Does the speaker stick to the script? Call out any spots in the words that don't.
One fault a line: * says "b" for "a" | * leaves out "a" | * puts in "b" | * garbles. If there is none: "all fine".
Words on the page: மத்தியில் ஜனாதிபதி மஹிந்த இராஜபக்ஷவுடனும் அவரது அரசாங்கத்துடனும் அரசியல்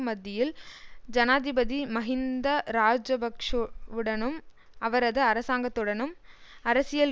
all fine